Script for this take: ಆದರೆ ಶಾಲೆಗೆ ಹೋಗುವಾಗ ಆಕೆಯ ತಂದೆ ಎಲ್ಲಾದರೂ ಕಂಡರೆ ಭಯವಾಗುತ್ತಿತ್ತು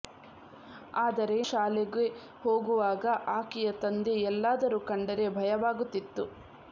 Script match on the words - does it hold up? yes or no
yes